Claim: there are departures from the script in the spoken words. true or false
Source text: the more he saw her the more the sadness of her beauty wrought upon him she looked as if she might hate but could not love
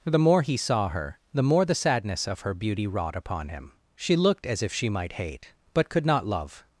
false